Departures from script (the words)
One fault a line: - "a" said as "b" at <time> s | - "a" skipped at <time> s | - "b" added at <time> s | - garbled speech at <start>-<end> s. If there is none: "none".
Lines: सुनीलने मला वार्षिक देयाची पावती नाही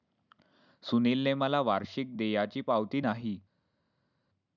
none